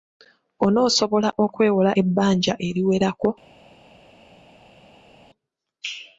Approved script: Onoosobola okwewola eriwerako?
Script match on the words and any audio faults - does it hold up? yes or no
no